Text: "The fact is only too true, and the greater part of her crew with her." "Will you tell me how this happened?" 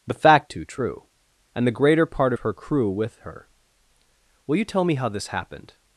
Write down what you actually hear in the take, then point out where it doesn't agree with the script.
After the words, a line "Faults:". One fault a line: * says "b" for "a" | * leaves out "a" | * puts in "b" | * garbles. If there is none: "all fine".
"The fact too true, and the greater part her crew with her." "Will you tell me how this happened?"
Faults:
* leaves out "is only"
* leaves out "of"